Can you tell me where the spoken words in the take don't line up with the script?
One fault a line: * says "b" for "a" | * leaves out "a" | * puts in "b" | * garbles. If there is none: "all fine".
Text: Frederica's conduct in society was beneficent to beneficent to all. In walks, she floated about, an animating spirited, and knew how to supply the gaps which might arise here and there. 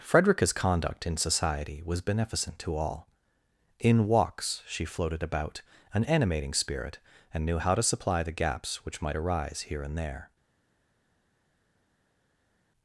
* leaves out "beneficent to"
* says "spirit" for "spirited"